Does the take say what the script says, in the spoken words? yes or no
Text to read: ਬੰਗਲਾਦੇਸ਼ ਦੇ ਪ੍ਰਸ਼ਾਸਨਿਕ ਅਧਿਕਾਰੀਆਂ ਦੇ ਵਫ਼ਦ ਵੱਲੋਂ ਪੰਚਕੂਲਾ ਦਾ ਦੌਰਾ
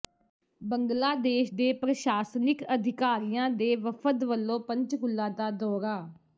yes